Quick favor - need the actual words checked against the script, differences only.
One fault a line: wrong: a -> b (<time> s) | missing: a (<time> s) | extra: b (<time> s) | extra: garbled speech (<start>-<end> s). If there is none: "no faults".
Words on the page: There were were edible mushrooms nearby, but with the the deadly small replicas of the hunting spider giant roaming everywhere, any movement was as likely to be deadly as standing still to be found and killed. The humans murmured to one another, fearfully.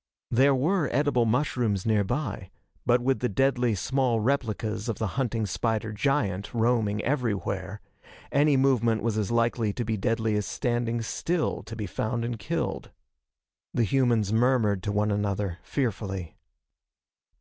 missing: were (0.9 s)
missing: the (3.3 s)